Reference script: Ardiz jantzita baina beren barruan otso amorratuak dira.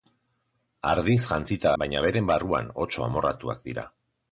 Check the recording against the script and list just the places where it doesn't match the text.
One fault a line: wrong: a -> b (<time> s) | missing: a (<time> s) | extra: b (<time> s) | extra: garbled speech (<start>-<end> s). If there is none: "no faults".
no faults